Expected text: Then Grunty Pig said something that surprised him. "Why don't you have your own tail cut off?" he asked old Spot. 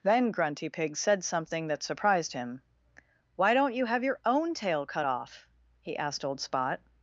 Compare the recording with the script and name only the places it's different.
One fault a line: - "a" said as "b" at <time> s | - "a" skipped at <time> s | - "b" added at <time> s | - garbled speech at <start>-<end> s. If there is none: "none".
none